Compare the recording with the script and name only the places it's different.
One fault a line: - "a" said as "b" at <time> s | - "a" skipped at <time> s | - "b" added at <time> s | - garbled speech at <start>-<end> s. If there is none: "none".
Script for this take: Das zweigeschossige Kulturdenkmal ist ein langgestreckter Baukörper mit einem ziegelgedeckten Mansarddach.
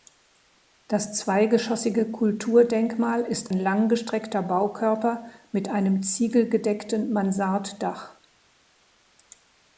- "ein" skipped at 3.5 s